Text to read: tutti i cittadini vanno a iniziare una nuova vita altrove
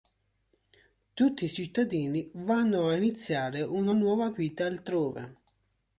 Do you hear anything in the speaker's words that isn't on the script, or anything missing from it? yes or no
no